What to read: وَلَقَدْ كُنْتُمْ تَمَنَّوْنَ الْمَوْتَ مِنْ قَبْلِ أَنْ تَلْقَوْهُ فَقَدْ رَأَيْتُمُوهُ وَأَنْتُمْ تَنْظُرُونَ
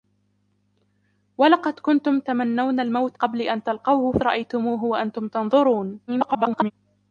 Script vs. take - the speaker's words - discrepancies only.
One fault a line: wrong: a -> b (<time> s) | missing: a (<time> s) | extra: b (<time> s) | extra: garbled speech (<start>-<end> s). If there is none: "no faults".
missing: مِنْ (3.2 s)
missing: فَقَدْ (4.2 s)
extra: garbled speech (6.1-6.7 s)